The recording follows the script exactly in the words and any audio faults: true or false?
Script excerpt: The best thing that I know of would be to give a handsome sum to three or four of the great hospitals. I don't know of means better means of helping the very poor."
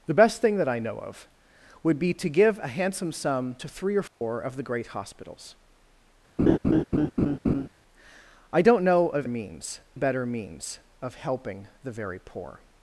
false